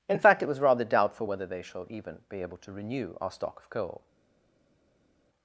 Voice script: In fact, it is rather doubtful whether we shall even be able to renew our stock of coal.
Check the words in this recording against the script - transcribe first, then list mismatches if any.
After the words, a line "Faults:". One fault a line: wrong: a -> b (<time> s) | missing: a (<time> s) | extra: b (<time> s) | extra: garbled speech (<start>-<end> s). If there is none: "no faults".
In fact, it was rather doubtful whether they shall even be able to renew our stock of coal.
Faults:
wrong: is -> was (0.5 s)
wrong: we -> they (1.5 s)